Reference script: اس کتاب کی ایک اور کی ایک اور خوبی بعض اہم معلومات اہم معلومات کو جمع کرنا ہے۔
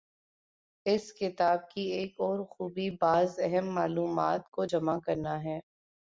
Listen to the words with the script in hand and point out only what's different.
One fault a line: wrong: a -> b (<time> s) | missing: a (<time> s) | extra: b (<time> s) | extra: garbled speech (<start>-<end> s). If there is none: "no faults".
missing: کی ایک اور (2.4 s)
missing: اہم معلومات (4.5 s)